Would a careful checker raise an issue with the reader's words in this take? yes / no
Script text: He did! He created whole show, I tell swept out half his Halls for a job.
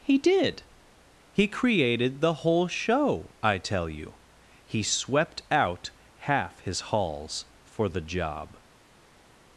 yes